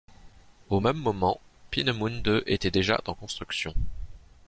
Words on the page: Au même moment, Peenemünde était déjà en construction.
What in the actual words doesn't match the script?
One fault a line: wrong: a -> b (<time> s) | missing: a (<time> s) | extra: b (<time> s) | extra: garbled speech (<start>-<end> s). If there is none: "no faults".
no faults